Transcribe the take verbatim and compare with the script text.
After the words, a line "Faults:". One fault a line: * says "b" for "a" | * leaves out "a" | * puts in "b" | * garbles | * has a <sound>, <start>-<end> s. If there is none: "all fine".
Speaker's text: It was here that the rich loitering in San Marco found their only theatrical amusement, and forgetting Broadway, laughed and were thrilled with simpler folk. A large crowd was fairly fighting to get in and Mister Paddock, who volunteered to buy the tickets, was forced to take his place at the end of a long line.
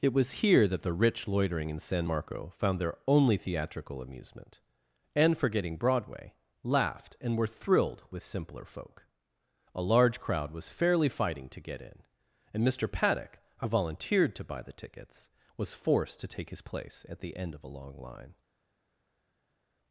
It was here that the rich loitering in San Marco found their only theatrical amusement, and forgetting Broadway, laughed and were thrilled with simpler folk. A large crowd was fairly fighting to get in and Mister Paddock, who volunteered to buy the tickets, was forced to take his place at the end of a long line.
Faults:
all fine